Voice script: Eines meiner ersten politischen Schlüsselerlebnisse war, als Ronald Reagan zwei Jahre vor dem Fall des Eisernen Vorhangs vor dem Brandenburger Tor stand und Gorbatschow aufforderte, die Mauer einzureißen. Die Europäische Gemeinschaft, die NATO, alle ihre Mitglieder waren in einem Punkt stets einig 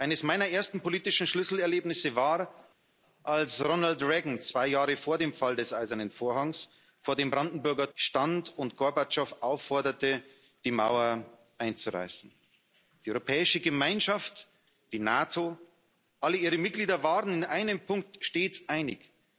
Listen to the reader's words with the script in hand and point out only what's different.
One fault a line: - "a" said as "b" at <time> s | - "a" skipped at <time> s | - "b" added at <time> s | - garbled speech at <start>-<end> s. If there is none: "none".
- "Tor" skipped at 7.9 s